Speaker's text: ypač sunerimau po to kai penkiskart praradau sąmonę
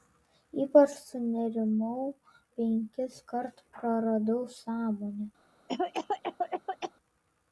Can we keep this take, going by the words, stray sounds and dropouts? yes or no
no